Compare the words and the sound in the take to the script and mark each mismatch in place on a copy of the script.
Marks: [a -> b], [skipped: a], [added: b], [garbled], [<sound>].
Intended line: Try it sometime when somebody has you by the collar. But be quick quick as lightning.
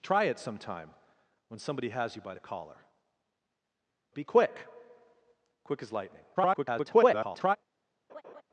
Try it sometime when somebody has you by the collar. [skipped: But] be quick quick as lightning. [garbled] [laugh]